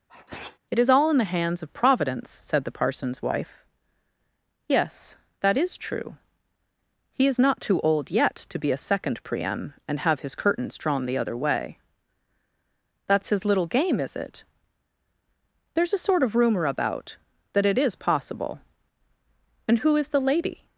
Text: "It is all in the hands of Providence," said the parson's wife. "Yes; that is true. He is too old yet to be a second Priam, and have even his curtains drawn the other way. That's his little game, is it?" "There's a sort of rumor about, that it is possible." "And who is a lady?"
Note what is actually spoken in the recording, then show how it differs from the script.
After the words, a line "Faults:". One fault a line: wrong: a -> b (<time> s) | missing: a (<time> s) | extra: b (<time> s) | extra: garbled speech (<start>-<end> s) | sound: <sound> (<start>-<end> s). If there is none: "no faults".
"It is all in the hands of Providence," said the parson's wife. "Yes; that is true. He is not too old yet to be a second Priam, and have his curtains drawn the other way. That's his little game, is it?" "There's a sort of rumor about, that it is possible." "And who is the lady?"
Faults:
sound: sneeze (0.1-0.6 s)
extra: not (7.4 s)
missing: even (10.2 s)
wrong: a -> the (20.1 s)